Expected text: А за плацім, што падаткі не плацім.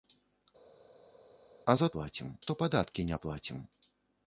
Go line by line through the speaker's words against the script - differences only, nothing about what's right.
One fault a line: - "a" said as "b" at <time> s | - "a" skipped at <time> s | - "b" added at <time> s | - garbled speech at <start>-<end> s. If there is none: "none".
none